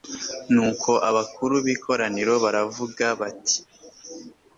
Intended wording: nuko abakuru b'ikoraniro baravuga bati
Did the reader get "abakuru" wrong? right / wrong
right